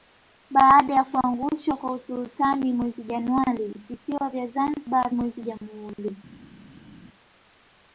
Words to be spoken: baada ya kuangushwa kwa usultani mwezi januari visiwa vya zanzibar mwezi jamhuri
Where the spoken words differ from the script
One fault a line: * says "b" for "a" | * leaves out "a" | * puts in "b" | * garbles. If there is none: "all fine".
all fine